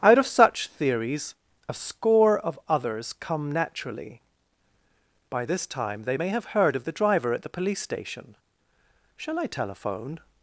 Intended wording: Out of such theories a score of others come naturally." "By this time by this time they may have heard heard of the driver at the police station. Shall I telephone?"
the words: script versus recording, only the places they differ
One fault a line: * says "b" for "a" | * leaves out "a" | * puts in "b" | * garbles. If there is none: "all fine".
* leaves out "by this time"
* leaves out "heard"